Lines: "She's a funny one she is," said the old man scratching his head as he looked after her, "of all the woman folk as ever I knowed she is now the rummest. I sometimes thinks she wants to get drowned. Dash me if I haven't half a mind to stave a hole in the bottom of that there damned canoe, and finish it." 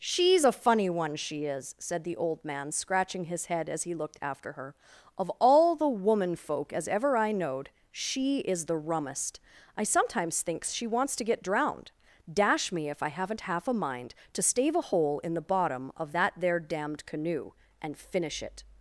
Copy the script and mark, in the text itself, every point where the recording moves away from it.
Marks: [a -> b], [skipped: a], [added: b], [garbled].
"She's a funny one she is," said the old man scratching his head as he looked after her, "of all the woman folk as ever I knowed she is [skipped: now] the rummest. I sometimes thinks she wants to get drowned. Dash me if I haven't half a mind to stave a hole in the bottom of that there damned canoe, and finish it."